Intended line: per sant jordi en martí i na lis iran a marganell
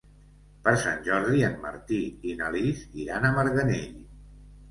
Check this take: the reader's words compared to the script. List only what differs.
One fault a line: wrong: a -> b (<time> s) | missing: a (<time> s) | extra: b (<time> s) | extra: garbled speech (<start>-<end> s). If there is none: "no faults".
no faults